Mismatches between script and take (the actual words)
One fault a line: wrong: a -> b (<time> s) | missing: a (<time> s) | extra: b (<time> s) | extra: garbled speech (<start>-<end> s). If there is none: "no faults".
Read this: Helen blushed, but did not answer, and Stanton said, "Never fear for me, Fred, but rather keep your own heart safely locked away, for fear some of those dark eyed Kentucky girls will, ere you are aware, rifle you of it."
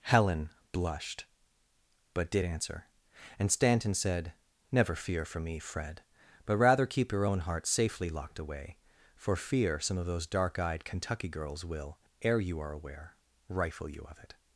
missing: not (2.5 s)